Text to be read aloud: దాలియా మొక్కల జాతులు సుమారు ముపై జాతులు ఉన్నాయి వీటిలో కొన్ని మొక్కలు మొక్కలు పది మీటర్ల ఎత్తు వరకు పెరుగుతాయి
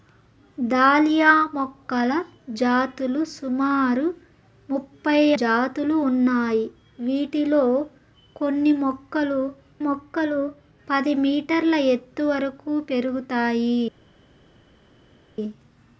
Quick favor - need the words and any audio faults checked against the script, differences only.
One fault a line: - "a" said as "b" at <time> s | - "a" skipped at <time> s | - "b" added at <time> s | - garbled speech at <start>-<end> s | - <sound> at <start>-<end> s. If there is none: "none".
none